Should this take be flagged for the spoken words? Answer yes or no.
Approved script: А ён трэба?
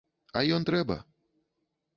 no